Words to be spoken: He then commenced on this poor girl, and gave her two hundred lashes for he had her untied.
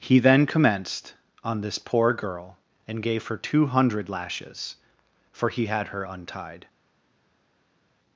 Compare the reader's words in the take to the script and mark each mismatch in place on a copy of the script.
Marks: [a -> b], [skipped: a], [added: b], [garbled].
He then commenced on this poor girl, and gave her two hundred lashes for he had her untied.